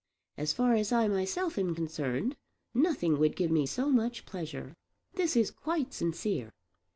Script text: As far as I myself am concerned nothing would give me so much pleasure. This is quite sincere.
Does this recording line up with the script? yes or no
yes